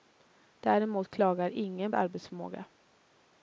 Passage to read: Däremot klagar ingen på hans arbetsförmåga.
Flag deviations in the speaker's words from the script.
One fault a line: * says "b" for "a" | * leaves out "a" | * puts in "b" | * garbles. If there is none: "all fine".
* leaves out "på hans"